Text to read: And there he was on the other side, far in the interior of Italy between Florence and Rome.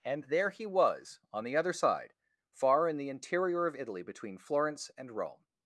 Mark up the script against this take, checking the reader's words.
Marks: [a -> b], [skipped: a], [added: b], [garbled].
And there he was on the other side, far in the interior of Italy between Florence and Rome.